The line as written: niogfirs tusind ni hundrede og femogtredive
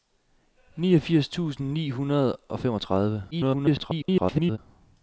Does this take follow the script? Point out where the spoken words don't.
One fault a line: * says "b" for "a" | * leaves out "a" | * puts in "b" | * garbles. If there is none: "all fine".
* garbles